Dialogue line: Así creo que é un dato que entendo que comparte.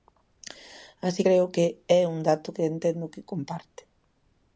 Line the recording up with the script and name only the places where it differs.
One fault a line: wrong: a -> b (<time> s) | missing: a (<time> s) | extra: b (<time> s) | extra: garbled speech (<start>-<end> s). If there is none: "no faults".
no faults